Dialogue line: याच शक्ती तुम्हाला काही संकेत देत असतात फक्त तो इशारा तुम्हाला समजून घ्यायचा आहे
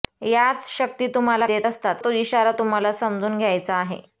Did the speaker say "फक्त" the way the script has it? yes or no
no